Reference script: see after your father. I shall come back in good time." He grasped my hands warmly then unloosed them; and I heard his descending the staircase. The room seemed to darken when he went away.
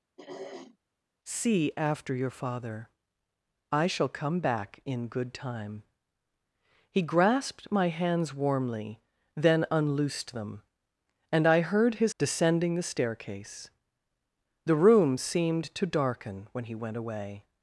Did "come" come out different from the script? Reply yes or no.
no